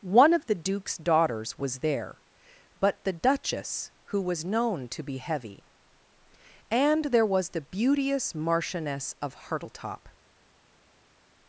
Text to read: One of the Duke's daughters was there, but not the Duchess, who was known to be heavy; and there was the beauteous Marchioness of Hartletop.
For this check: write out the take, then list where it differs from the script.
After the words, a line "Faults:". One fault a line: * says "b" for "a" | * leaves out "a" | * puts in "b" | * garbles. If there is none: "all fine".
One of the Duke's daughters was there, but the Duchess, who was known to be heavy; and there was the beauteous Marchioness of Hartletop.
Faults:
* leaves out "not"